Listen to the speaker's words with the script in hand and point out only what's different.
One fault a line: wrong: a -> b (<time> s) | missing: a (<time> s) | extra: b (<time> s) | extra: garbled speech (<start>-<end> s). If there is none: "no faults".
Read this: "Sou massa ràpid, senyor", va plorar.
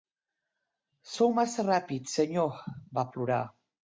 no faults